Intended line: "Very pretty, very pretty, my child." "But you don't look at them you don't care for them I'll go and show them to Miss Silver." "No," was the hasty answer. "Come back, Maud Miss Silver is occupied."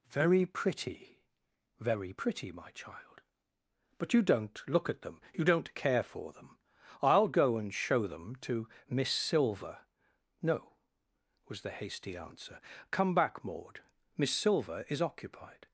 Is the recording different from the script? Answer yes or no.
no